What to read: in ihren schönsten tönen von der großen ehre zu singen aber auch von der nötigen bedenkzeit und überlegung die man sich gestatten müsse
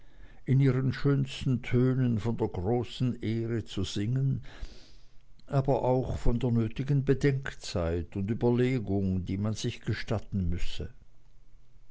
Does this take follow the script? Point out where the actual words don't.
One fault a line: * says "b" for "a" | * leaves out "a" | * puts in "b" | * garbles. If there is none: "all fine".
all fine